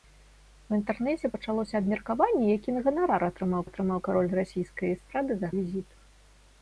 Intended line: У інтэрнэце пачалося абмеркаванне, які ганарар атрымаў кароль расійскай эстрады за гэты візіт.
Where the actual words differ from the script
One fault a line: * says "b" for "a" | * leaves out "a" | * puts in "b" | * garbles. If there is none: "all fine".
* puts in "атрымаў"
* leaves out "гэты"